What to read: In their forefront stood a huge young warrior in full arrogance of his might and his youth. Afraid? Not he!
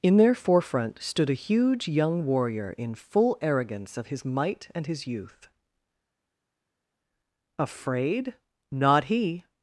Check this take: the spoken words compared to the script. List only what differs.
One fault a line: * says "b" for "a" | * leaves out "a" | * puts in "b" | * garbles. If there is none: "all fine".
all fine